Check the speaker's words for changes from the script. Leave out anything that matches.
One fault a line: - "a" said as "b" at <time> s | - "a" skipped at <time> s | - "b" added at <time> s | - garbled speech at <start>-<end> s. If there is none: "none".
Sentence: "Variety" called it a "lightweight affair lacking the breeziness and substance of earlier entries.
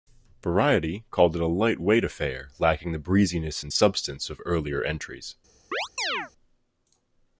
none